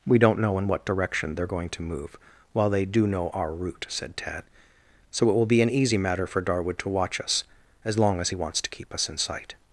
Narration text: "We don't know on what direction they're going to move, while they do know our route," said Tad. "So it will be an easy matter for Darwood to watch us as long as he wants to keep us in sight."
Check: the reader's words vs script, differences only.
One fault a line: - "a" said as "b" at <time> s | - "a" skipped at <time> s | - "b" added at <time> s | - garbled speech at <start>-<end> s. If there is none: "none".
- "on" said as "in" at 0.6 s